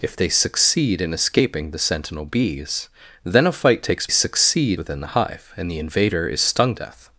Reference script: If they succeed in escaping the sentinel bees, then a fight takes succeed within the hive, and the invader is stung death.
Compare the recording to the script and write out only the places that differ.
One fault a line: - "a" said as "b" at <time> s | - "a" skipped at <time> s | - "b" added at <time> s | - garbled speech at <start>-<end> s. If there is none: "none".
none